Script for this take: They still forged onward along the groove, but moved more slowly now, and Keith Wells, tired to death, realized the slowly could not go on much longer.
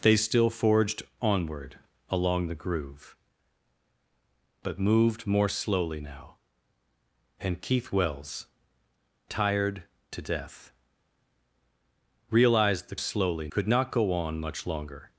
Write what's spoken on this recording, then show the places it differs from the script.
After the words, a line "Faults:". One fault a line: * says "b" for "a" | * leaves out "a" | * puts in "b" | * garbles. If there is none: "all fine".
They still forged onward along the groove, but moved more slowly now, and Keith Wells, tired to death, realized the slowly could not go on much longer.
Faults:
all fine